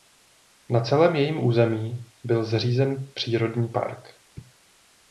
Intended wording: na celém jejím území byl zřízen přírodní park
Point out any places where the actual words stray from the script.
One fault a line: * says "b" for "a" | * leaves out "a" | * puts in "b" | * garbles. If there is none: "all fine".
all fine